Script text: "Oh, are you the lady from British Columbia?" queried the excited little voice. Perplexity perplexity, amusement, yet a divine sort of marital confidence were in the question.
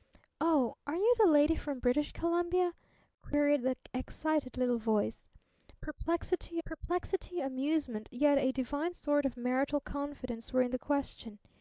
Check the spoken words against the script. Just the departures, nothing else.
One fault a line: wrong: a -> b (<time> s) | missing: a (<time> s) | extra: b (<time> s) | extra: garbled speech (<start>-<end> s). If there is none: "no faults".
no faults